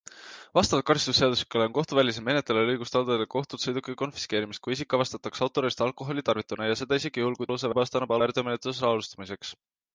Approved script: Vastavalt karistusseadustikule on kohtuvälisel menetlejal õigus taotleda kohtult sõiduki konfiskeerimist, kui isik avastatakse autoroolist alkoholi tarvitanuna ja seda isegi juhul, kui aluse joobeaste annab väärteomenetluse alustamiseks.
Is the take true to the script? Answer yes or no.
yes